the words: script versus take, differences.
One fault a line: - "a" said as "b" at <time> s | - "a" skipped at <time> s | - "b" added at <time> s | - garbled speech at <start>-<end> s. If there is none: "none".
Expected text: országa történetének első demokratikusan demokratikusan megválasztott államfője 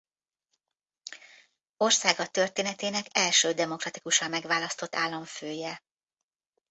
- "demokratikusan" skipped at 4.3 s